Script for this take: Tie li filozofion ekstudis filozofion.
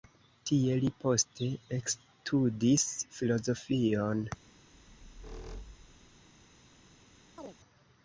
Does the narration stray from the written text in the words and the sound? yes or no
yes